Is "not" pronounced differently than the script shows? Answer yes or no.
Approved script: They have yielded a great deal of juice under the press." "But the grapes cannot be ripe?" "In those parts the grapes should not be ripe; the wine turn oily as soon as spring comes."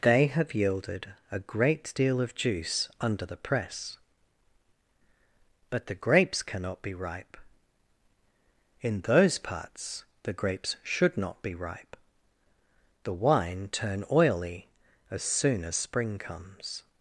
no